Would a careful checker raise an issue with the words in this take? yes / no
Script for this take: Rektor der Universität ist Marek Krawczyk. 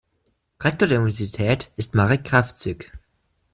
no